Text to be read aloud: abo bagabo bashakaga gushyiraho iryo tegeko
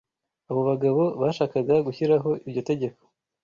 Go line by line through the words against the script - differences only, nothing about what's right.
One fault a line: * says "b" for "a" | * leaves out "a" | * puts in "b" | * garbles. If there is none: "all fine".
all fine